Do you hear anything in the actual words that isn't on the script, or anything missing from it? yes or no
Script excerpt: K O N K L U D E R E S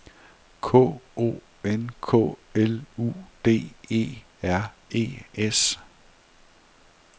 no